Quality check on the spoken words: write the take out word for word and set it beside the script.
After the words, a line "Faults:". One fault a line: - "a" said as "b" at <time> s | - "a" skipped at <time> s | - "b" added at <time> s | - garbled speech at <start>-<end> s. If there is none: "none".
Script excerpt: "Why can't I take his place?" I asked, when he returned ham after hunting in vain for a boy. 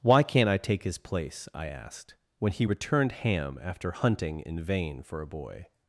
"Why can't I take his place?" I asked, when he returned ham after hunting in vain for a boy.
Faults:
none